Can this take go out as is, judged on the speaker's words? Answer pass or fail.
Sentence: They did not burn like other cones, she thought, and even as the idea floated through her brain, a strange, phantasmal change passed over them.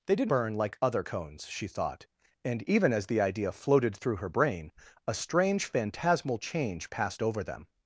fail